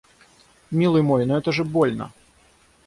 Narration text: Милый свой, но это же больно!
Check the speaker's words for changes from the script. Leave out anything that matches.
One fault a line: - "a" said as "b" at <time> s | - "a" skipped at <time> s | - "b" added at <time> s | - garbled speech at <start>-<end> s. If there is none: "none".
- "свой" said as "мой" at 1.0 s